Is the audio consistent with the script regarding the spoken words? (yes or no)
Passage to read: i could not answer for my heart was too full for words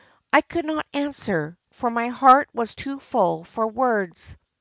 yes